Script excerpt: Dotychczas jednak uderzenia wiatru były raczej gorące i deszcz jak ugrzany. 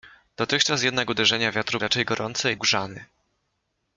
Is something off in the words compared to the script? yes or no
yes